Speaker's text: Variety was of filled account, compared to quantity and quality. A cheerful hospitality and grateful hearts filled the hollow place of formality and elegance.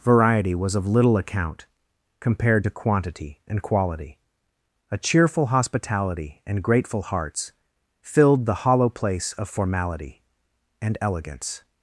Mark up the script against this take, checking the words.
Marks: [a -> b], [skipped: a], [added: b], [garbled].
Variety was of [filled -> little] account, compared to quantity and quality. A cheerful hospitality and grateful hearts filled the hollow place of formality and elegance.